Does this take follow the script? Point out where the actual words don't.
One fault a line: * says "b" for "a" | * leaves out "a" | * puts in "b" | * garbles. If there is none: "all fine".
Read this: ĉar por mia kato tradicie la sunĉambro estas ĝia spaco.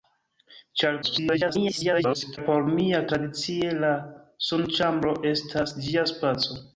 * garbles
* leaves out "kato"